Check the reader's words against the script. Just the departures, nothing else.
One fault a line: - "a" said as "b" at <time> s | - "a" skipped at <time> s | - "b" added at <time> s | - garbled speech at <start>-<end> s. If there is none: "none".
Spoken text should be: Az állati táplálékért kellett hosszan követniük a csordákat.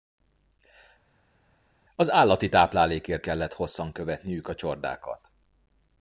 none